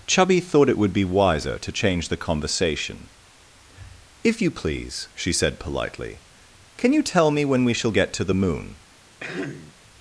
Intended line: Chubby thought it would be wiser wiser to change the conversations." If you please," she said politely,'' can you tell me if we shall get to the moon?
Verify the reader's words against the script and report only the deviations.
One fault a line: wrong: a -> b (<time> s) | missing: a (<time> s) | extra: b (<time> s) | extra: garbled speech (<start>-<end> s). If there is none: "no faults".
missing: wiser (1.6 s)
wrong: conversations -> conversation (2.2 s)
wrong: if -> when (7.4 s)